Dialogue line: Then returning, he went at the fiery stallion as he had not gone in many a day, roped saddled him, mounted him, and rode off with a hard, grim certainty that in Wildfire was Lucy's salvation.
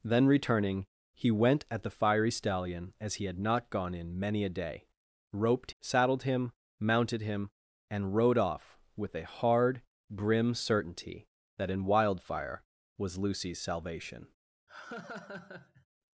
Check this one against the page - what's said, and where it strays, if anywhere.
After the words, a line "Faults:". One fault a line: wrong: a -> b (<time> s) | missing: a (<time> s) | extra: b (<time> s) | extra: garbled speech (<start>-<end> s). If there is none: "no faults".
Then returning, he went at the fiery stallion as he had not gone in many a day, roped saddled him, mounted him, and rode off with a hard, grim certainty that in Wildfire was Lucy's salvation.
Faults:
no faults